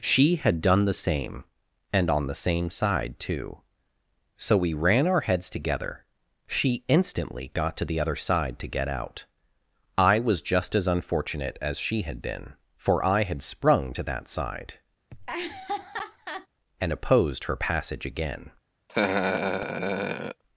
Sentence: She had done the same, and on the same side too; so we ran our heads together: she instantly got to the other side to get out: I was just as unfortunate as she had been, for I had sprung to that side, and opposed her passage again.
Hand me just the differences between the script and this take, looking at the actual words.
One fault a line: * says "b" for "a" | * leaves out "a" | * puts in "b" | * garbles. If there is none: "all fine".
all fine